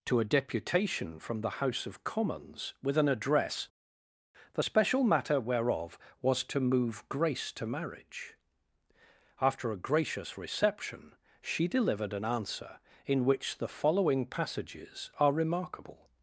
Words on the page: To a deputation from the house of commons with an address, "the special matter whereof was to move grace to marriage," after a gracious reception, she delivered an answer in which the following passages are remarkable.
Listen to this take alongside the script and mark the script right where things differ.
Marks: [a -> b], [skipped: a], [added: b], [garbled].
To a deputation from the house of commons with an address, "the special matter whereof was to move grace to marriage," after a gracious reception, she delivered an answer in which the following passages are remarkable.